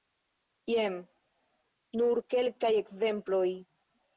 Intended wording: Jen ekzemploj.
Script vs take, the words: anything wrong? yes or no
yes